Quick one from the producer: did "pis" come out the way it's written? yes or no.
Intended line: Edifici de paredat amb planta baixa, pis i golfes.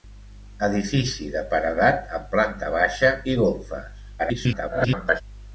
no